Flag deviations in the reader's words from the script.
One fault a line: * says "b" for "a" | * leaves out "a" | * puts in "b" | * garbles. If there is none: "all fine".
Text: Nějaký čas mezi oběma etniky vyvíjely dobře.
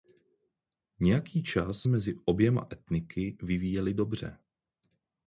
all fine